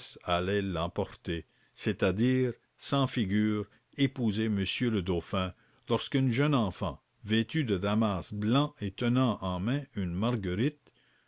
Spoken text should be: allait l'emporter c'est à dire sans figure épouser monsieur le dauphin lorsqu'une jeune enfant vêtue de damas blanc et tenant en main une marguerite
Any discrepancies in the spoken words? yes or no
no